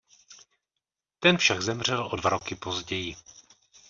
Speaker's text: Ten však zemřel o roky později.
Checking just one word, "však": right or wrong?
right